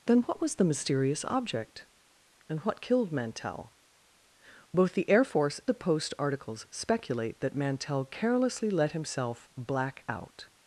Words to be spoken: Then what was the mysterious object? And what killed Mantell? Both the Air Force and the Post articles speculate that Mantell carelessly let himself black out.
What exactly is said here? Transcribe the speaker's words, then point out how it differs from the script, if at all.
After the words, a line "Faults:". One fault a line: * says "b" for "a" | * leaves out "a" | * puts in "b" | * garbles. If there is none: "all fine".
Then what was the mysterious object? And what killed Mantell? Both the Air Force the Post articles speculate that Mantell carelessly let himself black out.
Faults:
* leaves out "and"